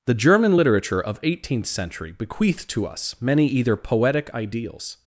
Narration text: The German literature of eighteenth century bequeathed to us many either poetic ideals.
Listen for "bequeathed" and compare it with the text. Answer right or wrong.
right